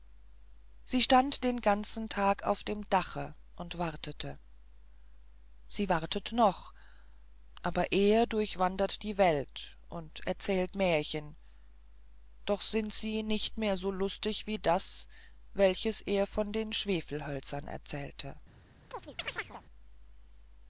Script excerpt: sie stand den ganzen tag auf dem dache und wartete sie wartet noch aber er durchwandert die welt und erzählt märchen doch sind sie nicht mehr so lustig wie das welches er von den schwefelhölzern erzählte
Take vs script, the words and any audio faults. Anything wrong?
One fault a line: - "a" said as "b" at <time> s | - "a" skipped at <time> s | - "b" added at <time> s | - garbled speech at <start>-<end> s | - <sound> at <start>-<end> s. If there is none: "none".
- chirp at 18.9-19.6 s